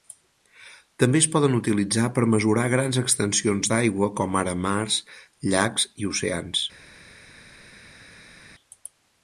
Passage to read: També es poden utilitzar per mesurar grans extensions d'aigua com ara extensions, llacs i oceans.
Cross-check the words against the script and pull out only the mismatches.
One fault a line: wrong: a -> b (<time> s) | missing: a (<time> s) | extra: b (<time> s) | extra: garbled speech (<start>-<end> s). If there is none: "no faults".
wrong: extensions -> mars (4.7 s)